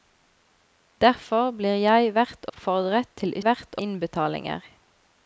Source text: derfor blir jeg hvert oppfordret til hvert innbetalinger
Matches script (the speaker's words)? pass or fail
pass